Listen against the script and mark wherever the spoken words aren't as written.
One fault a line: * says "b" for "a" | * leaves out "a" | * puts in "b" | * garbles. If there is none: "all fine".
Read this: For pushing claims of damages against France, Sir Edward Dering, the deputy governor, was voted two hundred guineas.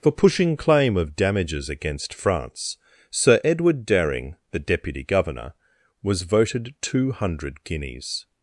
* says "claim" for "claims"